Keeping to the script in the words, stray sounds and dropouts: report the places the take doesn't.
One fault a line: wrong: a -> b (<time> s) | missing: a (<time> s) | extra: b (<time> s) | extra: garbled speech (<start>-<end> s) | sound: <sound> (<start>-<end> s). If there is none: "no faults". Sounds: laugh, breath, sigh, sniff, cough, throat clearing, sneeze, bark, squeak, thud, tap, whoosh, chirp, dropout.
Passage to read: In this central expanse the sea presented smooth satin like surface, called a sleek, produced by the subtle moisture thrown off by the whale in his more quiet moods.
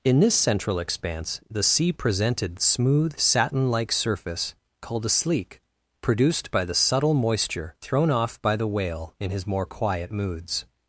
no faults